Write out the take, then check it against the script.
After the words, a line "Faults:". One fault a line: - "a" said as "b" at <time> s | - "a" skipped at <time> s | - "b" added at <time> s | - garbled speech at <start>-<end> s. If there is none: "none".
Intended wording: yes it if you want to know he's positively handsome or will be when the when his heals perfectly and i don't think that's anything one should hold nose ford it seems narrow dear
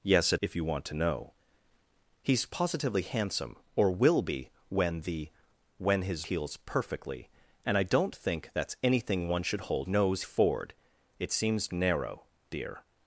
yes it if you want to know he's positively handsome or will be when the when his heals perfectly and i don't think that's anything one should hold nose ford it seems narrow dear
Faults:
none